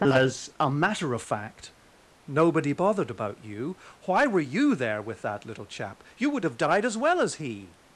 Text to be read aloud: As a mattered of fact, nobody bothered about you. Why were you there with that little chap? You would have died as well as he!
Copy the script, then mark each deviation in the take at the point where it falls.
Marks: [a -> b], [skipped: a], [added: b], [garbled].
As a [mattered -> matter] of fact, nobody bothered about you. Why were you there with that little chap? You would have died as well as he!